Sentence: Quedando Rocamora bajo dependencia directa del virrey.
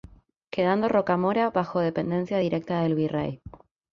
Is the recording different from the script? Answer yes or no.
no